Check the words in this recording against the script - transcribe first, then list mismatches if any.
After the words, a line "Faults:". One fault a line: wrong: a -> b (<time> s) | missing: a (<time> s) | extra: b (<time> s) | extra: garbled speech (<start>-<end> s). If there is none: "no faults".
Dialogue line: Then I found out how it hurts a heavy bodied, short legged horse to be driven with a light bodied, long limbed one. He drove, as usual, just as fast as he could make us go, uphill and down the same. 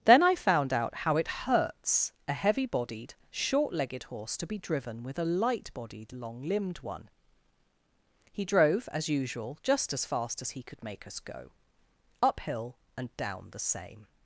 Then I found out how it hurts a heavy bodied, short legged horse to be driven with a light bodied, long limbed one. He drove, as usual, just as fast as he could make us go, uphill and down the same.
Faults:
no faults